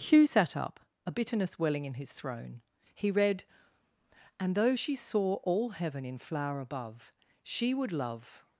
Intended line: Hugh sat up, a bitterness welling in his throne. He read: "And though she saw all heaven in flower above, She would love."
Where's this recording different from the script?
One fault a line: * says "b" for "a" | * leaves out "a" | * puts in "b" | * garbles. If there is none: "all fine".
all fine